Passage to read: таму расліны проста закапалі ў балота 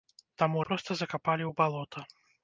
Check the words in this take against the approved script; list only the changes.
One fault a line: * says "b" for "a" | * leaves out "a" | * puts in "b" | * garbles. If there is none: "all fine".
* leaves out "расліны"